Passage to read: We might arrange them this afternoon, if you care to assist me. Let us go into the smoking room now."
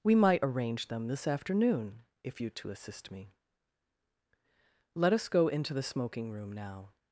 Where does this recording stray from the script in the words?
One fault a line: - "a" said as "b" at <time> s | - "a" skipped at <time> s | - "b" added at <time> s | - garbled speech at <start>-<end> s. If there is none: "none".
- "care" skipped at 2.5 s